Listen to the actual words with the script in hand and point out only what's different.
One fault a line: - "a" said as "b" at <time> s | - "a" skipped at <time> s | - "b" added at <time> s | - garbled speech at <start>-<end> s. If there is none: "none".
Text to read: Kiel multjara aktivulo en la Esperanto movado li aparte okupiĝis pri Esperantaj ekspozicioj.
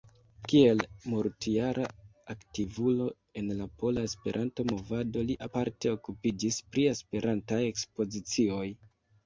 - "pola" added at 3.8 s